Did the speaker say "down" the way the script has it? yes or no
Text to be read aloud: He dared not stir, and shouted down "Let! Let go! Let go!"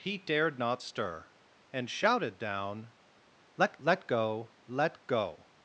yes